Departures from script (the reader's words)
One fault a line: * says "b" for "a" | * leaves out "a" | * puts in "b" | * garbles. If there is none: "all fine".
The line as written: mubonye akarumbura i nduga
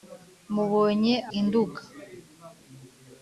* leaves out "akarumbura"